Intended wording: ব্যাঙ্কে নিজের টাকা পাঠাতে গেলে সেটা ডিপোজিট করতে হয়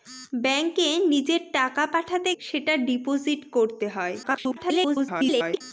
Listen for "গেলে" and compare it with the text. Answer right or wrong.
wrong